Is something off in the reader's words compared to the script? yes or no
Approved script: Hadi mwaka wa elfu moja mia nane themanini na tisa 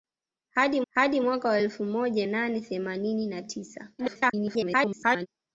yes